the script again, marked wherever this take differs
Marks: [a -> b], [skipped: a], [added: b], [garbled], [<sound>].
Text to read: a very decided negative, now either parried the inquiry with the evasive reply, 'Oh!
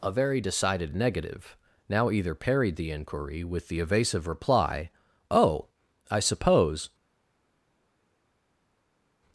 a very decided negative, now either parried the inquiry with the evasive reply, 'Oh! [added: I suppose]